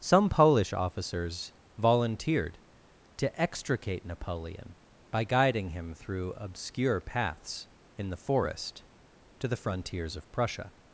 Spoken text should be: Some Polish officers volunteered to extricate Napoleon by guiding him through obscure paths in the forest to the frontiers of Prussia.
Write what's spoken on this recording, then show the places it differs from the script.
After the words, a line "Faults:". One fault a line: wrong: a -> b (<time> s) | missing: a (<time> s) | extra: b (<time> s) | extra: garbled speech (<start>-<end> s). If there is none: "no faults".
Some Polish officers volunteered to extricate Napoleon by guiding him through obscure paths in the forest to the frontiers of Prussia.
Faults:
no faults